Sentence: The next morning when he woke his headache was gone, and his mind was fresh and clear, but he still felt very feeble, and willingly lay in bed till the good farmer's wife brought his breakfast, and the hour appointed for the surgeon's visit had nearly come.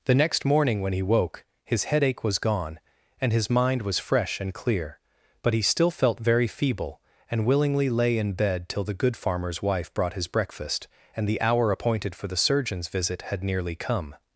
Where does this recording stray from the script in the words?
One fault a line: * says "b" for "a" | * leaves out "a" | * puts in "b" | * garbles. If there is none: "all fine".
all fine